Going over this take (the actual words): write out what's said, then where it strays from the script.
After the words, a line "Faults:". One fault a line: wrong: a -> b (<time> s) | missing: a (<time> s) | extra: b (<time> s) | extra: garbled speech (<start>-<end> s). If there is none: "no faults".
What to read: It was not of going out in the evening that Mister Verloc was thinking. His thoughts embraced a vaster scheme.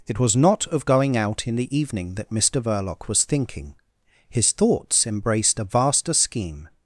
It was not of going out in the evening that Mister Verloc was thinking. His thoughts embraced a vaster scheme.
Faults:
no faults